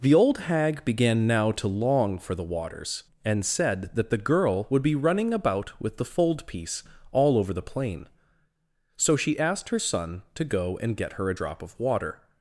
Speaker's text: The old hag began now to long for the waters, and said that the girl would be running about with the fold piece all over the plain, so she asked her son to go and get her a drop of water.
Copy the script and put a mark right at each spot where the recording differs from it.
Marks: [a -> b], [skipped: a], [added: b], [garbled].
The old hag began now to long for the waters, and said that the girl would be running about with the fold piece all over the plain, so she asked her son to go and get her a drop of water.